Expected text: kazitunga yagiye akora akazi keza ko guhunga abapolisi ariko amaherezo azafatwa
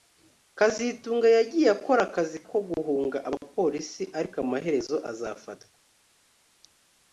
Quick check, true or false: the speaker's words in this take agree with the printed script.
false